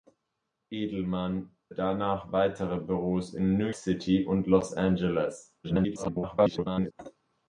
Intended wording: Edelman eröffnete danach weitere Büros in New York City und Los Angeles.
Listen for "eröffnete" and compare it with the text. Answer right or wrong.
wrong